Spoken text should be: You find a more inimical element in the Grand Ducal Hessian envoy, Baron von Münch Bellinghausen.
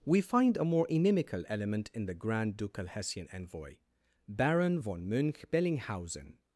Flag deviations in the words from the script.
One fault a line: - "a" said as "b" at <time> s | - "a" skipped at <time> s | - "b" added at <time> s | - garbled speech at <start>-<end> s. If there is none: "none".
- "You" said as "We" at 0.0 s